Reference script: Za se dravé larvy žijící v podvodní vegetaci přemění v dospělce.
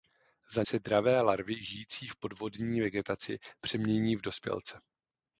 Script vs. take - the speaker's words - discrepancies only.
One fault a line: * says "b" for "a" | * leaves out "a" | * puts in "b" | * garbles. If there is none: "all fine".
all fine